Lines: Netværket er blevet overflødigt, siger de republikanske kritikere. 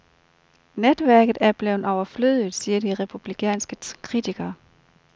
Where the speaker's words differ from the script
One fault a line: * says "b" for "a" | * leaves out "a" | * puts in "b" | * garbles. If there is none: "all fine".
all fine